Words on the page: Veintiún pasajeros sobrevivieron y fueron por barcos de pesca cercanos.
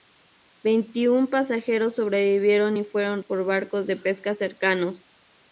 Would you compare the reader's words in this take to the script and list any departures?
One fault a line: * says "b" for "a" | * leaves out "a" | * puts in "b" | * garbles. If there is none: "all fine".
all fine